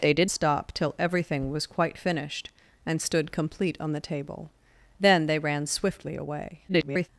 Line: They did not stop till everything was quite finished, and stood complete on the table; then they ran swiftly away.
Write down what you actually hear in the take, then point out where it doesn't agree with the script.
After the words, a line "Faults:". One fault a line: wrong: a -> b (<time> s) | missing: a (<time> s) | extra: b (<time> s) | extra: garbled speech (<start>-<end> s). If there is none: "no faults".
They did stop till everything was quite finished, and stood complete on the table; then they ran swiftly away. [garbled]
Faults:
missing: not (0.3 s)
extra: garbled speech (6.7-7.1 s)